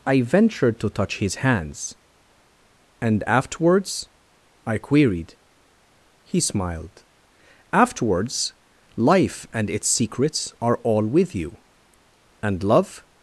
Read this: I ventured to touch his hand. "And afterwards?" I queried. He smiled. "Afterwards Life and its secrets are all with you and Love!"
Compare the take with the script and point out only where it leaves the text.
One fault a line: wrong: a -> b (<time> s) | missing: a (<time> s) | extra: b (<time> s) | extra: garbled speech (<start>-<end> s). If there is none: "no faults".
wrong: hand -> hands (1.4 s)